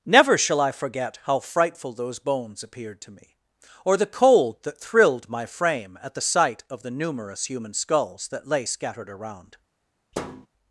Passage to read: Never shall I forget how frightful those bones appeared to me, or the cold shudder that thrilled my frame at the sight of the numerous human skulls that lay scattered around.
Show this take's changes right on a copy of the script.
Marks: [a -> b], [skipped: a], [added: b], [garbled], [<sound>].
Never shall I forget how frightful those bones appeared to me, or the cold [skipped: shudder] that thrilled my frame at the sight of the numerous human skulls that lay scattered around. [thud]